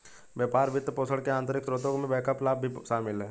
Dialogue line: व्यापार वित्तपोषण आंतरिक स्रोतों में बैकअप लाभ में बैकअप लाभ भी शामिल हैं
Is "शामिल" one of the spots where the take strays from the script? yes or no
no